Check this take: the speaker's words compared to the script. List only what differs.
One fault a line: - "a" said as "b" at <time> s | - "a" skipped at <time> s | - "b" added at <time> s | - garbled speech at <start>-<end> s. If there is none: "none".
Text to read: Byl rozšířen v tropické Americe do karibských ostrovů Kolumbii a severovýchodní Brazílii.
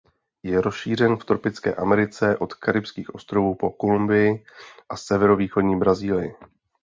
- "Byl" said as "Je" at 0.4 s
- "do" said as "od" at 2.4 s
- "po" added at 3.5 s